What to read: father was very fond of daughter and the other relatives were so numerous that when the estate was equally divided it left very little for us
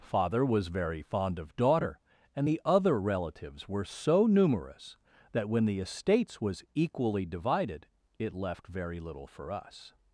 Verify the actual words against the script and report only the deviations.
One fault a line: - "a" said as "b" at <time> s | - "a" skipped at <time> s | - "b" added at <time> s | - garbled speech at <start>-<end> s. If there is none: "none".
- "estate" said as "estates" at 5.8 s